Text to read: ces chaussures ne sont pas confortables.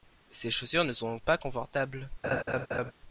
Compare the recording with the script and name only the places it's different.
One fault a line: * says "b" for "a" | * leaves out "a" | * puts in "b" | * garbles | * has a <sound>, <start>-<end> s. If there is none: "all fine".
* has a laugh, 2.2-2.9 s